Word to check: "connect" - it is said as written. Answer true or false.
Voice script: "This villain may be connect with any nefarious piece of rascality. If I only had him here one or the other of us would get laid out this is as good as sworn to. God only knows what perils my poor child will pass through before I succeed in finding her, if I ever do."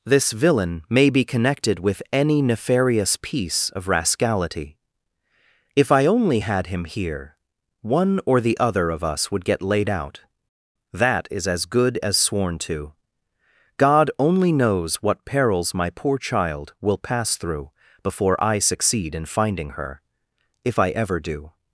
false